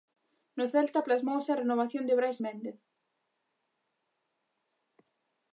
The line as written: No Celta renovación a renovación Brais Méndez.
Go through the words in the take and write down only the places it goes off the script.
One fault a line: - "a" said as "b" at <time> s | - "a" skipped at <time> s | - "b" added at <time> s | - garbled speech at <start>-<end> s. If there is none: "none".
- "renovación" said as "plasmouse" at 1.1 s
- "de" added at 2.0 s